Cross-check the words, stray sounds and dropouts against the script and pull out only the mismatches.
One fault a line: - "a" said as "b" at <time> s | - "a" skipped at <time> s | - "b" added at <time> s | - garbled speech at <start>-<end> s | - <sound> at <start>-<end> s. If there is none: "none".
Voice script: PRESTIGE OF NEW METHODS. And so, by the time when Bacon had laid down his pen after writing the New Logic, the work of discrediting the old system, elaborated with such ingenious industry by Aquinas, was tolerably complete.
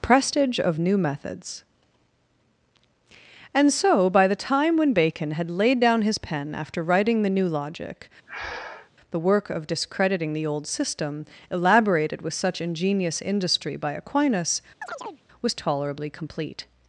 - breath at 8.3-8.9 s
- chirp at 14.8-15.2 s